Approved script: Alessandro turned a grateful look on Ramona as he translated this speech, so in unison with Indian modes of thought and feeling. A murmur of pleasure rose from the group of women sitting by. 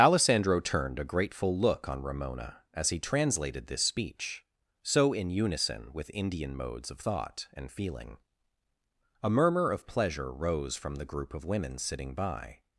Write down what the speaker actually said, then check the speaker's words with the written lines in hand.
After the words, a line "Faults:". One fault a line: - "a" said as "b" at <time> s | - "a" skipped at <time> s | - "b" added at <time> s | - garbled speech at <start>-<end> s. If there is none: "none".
Alessandro turned a grateful look on Ramona as he translated this speech, so in unison with Indian modes of thought and feeling. A murmur of pleasure rose from the group of women sitting by.
Faults:
none